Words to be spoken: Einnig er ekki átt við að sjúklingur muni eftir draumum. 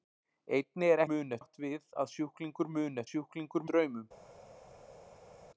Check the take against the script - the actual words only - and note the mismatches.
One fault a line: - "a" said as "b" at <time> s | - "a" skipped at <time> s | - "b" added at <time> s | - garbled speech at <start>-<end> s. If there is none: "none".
- "ekki" said as "muni" at 1.1 s
- "eftir" said as "sjúklingur" at 3.1 s